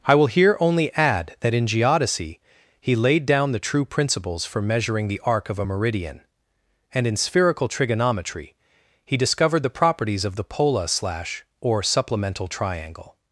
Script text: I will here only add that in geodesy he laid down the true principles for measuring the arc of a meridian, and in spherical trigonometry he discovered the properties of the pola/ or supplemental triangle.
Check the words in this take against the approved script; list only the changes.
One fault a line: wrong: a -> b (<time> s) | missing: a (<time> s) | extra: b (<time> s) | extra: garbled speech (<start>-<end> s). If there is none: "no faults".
extra: slash (10.9 s)